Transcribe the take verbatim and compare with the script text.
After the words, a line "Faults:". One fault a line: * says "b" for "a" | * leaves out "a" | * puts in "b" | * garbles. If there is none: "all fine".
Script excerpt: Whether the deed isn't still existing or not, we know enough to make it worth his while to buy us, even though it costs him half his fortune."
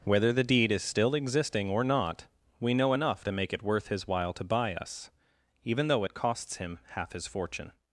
Whether the deed is still existing or not, we know enough to make it worth his while to buy us, even though it costs him half his fortune."
Faults:
* says "is" for "isn't"